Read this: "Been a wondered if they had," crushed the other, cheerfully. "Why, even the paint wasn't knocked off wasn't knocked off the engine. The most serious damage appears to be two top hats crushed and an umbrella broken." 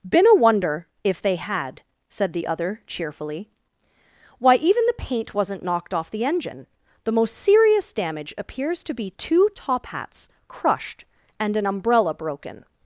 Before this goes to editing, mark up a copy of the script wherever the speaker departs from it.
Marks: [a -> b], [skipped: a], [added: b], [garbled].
"Been a [wondered -> wonder] if they had," [crushed -> said] the other, cheerfully. "Why, even the paint wasn't knocked off [skipped: wasn't knocked off] the engine. The most serious damage appears to be two top hats crushed and an umbrella broken."